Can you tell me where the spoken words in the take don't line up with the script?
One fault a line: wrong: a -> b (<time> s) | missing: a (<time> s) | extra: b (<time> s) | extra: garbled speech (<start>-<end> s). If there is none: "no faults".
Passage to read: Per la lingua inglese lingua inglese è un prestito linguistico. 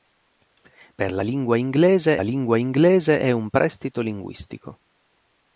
no faults